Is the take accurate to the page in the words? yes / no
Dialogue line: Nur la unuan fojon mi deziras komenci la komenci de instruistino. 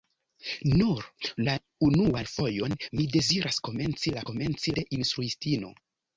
yes